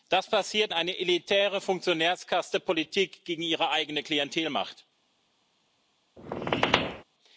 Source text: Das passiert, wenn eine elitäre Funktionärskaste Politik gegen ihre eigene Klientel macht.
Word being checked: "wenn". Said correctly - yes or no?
no